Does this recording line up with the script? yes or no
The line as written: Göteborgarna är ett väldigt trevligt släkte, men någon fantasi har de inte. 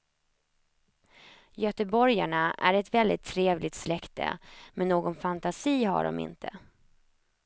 yes